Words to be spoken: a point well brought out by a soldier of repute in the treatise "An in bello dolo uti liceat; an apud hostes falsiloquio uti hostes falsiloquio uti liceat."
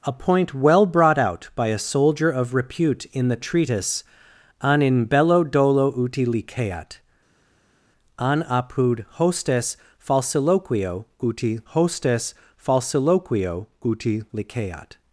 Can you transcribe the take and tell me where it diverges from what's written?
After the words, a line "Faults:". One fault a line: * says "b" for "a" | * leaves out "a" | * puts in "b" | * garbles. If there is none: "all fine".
a point well brought out by a soldier of repute in the treatise "An in bello dolo uti liceat; an apud hostes falsiloquio uti hostes falsiloquio uti liceat."
Faults:
all fine